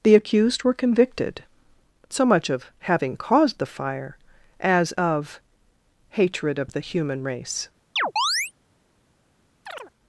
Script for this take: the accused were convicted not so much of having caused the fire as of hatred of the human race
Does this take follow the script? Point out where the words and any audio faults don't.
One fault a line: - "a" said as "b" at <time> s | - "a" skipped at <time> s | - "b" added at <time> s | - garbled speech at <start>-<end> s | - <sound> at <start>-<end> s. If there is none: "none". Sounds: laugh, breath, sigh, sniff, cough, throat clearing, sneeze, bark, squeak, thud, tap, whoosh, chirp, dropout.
- "not" skipped at 1.4 s
- chirp at 8.0-8.5 s
- chirp at 9.7-9.9 s